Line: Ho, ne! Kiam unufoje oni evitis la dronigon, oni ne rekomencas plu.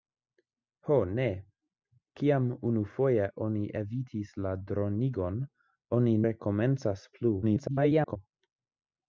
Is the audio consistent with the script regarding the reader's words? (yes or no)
no